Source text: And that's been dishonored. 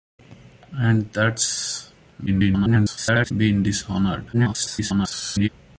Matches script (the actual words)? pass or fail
fail